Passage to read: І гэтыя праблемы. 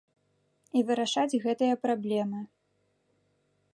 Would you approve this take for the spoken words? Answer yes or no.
no